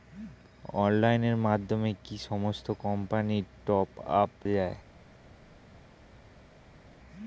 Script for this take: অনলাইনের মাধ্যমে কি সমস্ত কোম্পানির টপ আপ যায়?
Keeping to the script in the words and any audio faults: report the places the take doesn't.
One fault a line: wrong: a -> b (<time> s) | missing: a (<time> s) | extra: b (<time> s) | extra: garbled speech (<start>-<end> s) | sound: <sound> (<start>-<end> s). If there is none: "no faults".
no faults